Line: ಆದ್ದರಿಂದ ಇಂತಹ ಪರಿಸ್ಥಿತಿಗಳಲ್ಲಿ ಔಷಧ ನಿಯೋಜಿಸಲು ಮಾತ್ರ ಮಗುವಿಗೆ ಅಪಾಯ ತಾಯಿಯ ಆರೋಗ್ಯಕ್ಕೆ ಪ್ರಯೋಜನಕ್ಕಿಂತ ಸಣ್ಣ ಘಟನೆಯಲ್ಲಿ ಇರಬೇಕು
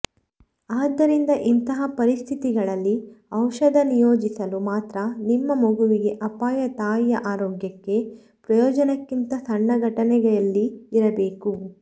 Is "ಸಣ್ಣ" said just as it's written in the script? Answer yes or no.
yes